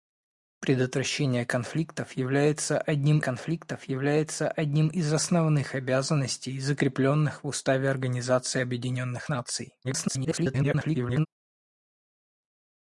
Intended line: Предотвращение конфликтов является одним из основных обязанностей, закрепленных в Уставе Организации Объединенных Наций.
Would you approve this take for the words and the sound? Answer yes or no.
no